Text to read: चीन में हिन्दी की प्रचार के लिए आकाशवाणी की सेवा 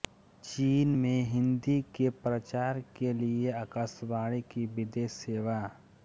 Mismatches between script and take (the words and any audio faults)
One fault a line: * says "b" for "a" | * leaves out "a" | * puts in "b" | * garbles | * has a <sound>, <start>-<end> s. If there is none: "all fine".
* says "के" for "की"
* puts in "विदेश"